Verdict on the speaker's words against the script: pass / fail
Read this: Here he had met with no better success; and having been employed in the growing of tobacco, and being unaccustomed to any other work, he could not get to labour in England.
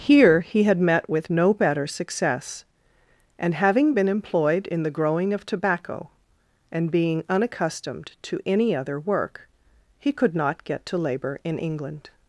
pass